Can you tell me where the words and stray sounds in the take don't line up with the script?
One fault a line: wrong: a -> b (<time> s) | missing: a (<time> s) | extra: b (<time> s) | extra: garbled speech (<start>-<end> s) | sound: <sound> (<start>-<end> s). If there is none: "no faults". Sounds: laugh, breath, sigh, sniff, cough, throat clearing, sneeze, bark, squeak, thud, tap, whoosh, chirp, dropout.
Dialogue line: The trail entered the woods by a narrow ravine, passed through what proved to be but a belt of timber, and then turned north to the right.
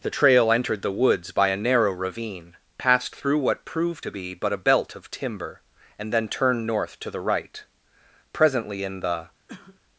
extra: Presently in the (8.3 s)
sound: cough (9.5-9.8 s)